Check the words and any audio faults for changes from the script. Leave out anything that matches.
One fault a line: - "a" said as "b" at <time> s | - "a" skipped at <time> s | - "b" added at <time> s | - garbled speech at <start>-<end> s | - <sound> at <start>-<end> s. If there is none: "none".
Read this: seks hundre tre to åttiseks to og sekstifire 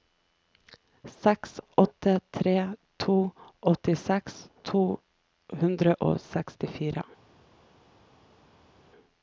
- "hundre" said as "åtte" at 1.8 s
- "hundre" added at 5.6 s